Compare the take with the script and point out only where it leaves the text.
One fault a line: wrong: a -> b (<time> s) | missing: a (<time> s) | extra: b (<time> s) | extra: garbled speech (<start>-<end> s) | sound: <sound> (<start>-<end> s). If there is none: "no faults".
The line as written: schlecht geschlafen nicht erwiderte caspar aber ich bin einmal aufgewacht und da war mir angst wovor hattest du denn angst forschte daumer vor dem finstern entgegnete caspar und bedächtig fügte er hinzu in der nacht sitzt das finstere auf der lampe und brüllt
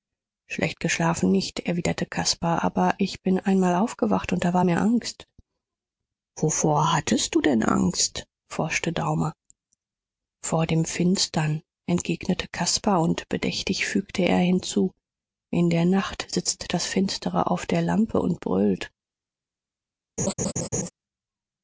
sound: laugh (20.2-20.9 s)